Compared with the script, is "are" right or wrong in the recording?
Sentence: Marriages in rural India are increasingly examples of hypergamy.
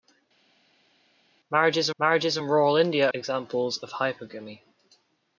wrong